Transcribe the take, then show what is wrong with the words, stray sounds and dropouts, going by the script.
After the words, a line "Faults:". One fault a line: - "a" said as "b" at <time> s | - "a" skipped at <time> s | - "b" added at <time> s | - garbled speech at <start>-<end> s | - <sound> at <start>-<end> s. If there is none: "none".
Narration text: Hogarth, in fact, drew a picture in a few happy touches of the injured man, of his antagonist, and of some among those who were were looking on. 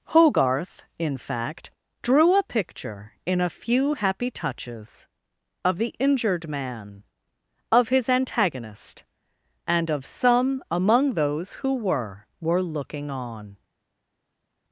Hogarth, in fact, drew a picture in a few happy touches of the injured man, of his antagonist, and of some among those who were were looking on.
Faults:
none